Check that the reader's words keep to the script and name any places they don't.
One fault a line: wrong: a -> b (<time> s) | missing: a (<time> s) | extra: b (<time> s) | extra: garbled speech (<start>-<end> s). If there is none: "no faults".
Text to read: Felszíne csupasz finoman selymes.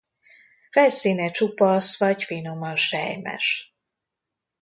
extra: vagy (2.0 s)